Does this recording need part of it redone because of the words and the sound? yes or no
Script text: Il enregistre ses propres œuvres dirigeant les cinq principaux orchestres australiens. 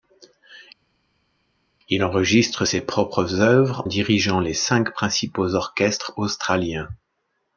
no